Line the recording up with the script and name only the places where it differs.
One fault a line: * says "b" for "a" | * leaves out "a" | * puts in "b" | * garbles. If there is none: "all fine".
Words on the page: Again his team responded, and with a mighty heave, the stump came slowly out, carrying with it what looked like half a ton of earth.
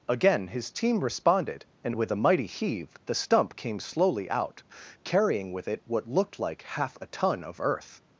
all fine